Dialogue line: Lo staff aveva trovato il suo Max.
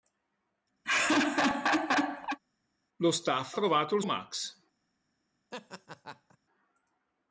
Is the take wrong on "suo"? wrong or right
wrong